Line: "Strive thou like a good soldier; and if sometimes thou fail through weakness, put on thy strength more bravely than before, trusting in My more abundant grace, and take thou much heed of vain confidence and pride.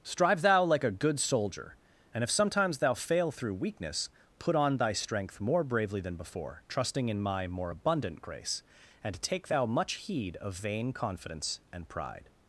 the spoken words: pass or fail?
pass